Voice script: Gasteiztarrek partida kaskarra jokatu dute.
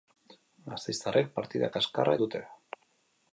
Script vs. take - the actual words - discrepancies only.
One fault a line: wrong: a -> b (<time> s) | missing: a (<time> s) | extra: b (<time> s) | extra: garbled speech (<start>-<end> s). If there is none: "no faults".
missing: jokatu (2.1 s)